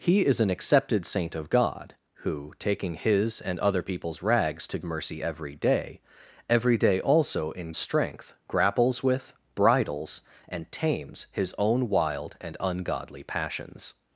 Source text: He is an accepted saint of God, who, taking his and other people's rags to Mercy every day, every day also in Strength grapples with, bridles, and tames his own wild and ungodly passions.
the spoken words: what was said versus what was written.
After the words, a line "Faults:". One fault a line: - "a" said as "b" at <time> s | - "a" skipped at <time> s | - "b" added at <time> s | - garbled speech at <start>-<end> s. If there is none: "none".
He is an accepted saint of God, who, taking his and other people's rags to Mercy every day, every day also in Strength grapples with, bridles, and tames his own wild and ungodly passions.
Faults:
none